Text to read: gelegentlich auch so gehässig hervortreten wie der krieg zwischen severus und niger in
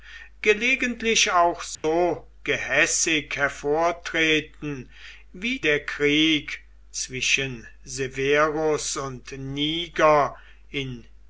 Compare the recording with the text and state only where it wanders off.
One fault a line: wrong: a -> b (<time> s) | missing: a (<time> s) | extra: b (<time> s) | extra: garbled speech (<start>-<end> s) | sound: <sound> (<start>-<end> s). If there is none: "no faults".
sound: dropout (1.7-1.8 s)